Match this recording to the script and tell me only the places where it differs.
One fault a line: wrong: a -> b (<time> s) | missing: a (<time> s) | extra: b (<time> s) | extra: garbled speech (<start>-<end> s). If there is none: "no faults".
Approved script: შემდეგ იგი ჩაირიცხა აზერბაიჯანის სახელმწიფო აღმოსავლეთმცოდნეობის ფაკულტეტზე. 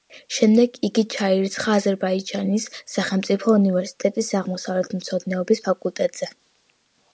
extra: უნივერსიტეტის (3.6 s)